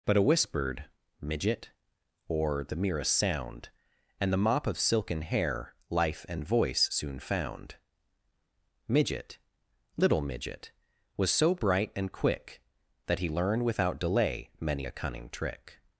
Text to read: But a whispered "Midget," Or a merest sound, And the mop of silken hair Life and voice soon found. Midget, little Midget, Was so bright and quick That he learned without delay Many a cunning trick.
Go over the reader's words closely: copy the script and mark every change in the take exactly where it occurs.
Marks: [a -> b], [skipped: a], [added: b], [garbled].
But a whispered "Midget," Or [a -> the] merest sound, And the mop of silken hair Life and voice soon found. Midget, little Midget, Was so bright and quick That he learned without delay Many a cunning trick.